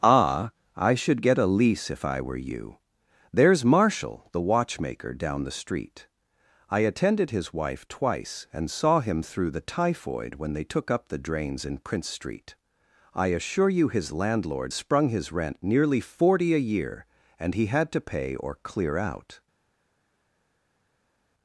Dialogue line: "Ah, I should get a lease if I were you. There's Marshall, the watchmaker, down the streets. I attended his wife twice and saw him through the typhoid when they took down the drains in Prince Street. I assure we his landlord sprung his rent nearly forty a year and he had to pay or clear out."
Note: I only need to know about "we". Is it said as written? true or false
false